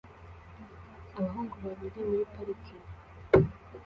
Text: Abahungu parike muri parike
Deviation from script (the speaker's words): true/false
true